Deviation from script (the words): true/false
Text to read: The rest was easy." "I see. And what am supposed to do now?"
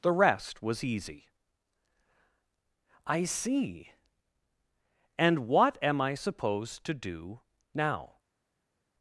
true